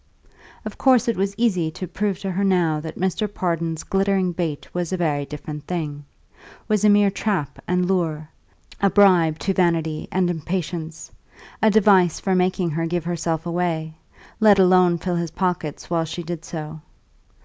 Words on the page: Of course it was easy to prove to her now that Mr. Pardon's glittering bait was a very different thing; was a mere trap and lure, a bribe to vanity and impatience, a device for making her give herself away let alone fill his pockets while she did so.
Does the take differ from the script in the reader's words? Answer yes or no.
no